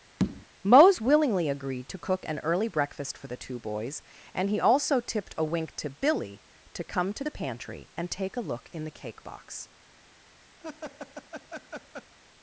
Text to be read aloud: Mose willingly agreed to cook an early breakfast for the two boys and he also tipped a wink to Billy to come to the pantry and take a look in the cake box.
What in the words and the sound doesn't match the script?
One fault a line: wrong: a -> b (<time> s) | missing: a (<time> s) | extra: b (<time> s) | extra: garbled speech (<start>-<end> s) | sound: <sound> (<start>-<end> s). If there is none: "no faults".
sound: tap (0.2-0.5 s)
sound: laugh (10.6-12.1 s)